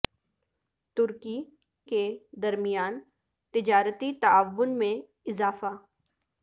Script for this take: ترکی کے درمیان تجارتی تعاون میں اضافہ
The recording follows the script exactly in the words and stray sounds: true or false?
true